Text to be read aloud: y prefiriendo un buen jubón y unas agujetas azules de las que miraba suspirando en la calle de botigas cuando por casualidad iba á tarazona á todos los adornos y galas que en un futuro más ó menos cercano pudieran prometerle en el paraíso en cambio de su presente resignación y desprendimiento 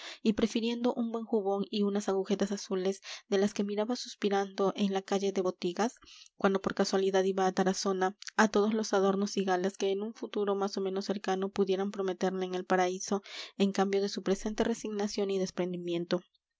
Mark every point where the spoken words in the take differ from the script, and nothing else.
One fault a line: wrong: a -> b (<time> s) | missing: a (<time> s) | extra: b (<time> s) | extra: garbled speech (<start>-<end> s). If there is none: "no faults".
no faults